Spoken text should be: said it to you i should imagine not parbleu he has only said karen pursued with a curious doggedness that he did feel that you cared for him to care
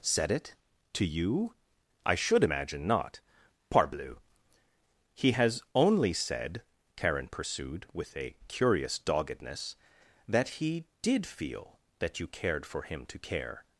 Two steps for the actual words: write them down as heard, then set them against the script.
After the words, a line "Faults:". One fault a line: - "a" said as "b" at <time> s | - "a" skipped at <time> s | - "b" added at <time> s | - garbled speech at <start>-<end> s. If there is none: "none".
said it to you i should imagine not parbleu he has only said karen pursued with a curious doggedness that he did feel that you cared for him to care
Faults:
none